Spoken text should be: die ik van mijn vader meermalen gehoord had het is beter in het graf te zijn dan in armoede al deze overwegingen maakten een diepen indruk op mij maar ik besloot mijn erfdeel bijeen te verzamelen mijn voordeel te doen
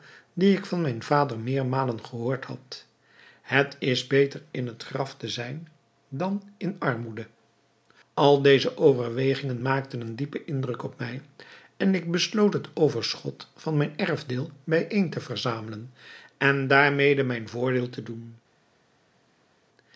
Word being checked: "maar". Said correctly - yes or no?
no